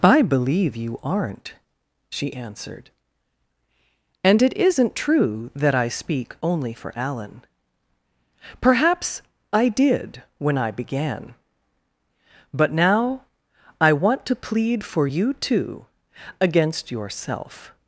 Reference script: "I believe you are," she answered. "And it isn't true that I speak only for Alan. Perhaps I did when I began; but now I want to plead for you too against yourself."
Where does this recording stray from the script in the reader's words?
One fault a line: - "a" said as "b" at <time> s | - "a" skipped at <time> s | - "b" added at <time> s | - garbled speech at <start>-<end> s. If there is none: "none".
- "are" said as "aren't" at 1.0 s